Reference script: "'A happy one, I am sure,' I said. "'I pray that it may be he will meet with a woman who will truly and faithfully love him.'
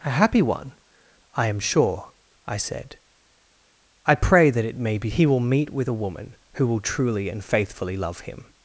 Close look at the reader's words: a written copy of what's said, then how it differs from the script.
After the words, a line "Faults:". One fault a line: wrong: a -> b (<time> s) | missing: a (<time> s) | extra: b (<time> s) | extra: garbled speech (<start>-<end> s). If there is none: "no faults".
"'A happy one, I am sure,' I said. "'I pray that it may be he will meet with a woman who will truly and faithfully love him.'
Faults:
no faults